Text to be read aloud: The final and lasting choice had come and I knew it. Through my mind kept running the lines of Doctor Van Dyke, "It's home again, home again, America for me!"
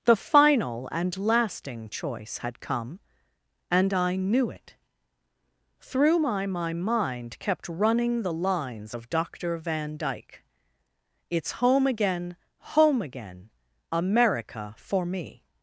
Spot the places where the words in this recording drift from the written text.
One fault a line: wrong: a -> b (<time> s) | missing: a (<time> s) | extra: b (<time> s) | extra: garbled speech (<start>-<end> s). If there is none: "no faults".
extra: my (6.5 s)